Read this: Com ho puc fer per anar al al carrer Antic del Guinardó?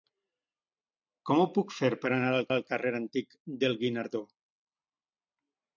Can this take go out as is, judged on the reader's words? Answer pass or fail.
pass